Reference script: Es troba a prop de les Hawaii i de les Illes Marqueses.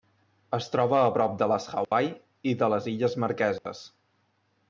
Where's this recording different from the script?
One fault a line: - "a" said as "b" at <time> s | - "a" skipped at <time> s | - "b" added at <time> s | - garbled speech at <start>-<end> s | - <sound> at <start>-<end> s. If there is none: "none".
- dropout at 1.8-1.9 s
- dropout at 3.6-3.7 s